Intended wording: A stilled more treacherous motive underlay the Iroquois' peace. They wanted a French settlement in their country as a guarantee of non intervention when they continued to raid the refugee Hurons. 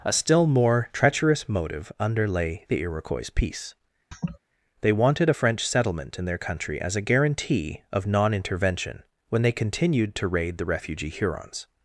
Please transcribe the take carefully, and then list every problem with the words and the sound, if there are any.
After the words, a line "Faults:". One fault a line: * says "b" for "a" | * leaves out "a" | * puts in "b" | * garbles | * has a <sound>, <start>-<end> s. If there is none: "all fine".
A still more treacherous motive underlay the Iroquois' peace. They wanted a French settlement in their country as a guarantee of non intervention when they continued to raid the refugee Hurons.
Faults:
* says "still" for "stilled"
* has a laugh, 4.1-4.4 s